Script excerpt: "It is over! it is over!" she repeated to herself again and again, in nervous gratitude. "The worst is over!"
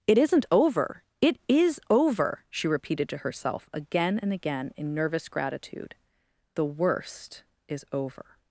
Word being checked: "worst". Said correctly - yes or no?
yes